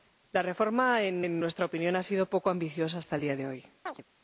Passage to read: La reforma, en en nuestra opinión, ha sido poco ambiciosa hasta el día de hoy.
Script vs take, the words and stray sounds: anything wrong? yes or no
yes